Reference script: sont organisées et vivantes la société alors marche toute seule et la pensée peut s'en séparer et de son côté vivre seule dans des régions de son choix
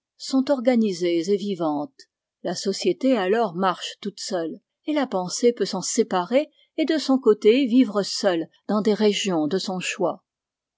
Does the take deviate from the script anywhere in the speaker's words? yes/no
no